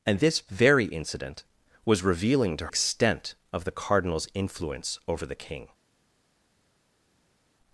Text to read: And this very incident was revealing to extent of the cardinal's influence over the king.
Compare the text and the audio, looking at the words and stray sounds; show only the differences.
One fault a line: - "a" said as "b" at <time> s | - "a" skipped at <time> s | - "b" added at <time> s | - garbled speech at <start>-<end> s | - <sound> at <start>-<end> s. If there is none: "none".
none